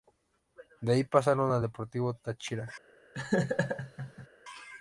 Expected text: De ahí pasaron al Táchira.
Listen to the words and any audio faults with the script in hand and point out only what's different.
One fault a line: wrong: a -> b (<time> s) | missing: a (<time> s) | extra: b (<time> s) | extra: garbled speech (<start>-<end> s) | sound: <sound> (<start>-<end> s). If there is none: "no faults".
extra: Deportivo (1.6 s)
sound: laugh (3.1-4.3 s)